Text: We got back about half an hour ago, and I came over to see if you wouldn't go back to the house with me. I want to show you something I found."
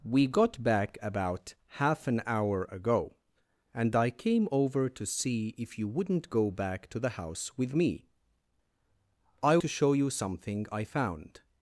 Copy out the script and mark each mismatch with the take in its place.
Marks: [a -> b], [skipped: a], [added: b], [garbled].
We got back about half an hour ago, and I came over to see if you wouldn't go back to the house with me. I [skipped: want] to show you something I found."